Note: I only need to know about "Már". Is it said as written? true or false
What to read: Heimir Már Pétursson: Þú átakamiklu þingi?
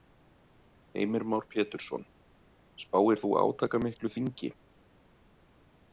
true